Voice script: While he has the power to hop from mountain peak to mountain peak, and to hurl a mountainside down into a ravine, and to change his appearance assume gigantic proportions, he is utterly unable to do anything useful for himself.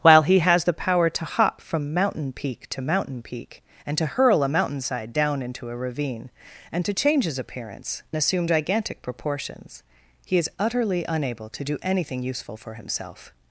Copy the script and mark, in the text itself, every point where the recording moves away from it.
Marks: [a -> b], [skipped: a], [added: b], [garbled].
While he has the power to hop from mountain peak to mountain peak, and to hurl a mountainside down into a ravine, and to change his appearance assume gigantic proportions, he is utterly unable to do anything useful for himself.